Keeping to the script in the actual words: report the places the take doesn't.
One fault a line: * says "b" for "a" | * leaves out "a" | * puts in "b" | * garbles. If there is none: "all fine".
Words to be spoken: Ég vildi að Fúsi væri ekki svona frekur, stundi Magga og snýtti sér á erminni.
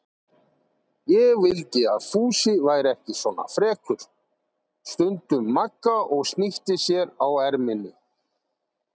all fine